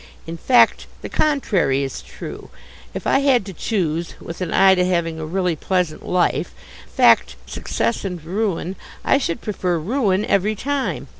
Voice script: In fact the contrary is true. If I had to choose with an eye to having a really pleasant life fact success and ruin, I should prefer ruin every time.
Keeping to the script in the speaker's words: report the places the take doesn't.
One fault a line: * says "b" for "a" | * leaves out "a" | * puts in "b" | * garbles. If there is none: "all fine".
all fine